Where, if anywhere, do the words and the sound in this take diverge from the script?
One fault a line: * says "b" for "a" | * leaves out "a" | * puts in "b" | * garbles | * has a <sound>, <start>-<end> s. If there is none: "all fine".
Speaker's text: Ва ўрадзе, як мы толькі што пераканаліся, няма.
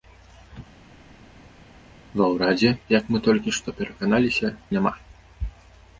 all fine